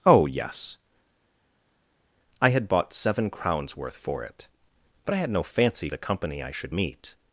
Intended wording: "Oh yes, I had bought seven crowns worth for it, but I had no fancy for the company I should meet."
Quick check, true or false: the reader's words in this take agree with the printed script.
false